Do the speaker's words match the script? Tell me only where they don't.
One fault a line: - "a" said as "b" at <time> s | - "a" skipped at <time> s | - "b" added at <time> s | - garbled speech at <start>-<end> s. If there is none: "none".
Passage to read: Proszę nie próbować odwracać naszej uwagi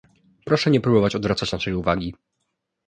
none